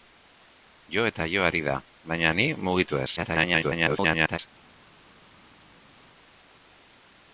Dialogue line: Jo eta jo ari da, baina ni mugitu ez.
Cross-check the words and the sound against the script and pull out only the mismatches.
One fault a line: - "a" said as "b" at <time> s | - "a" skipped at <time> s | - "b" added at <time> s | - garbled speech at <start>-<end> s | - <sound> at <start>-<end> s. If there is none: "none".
- garbled speech at 3.2-4.4 s